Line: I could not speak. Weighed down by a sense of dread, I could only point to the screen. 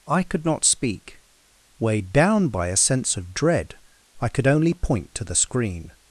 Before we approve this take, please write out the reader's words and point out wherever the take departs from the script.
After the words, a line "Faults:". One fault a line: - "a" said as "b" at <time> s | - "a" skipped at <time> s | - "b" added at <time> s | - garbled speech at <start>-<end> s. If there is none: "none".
I could not speak. Weighed down by a sense of dread, I could only point to the screen.
Faults:
none